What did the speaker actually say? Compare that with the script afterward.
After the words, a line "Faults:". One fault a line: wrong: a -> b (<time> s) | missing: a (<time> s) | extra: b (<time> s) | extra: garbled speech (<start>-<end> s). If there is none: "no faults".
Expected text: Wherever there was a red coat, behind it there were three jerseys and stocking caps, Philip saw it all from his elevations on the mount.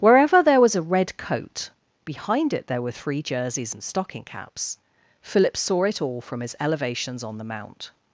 Wherever there was a red coat, behind it there were three jerseys and stocking caps, Philip saw it all from his elevations on the mount.
Faults:
no faults